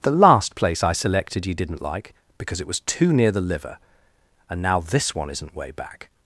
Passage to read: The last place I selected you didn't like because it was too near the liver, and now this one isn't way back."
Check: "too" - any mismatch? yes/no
no